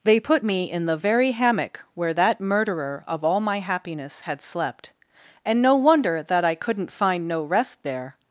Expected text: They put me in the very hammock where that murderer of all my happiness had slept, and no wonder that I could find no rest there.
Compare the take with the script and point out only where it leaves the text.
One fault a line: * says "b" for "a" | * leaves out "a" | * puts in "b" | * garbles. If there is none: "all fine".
* says "couldn't" for "could"